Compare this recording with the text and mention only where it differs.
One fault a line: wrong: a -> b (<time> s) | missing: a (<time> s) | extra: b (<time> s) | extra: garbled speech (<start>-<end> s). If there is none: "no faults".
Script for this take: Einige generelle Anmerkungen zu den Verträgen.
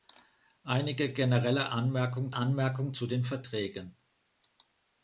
extra: Anmerkungen (2.3 s)